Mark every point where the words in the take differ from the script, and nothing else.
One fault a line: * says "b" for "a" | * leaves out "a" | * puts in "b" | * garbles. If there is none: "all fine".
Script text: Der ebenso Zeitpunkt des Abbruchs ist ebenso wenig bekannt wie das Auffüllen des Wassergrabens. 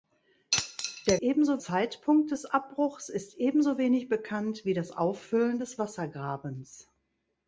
all fine